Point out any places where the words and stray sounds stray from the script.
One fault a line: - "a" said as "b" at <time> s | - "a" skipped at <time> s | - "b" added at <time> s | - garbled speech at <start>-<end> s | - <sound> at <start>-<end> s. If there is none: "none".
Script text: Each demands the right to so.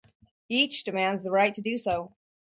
- "do" added at 1.6 s